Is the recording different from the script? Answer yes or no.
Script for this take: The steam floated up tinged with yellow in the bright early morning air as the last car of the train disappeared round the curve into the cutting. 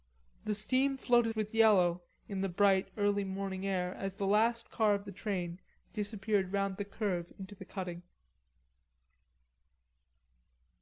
yes